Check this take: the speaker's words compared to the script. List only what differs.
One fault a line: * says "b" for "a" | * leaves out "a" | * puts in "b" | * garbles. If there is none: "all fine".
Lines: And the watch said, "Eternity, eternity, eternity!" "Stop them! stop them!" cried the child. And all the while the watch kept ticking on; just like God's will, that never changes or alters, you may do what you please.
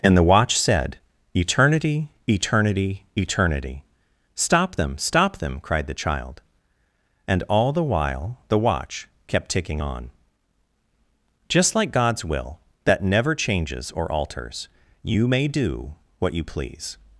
all fine